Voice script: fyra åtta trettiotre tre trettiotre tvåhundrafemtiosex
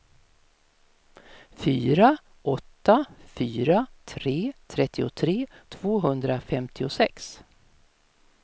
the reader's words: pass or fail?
fail